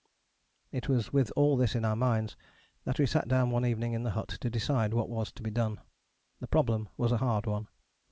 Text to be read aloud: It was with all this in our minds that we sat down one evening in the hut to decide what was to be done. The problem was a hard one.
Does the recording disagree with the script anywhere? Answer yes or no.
no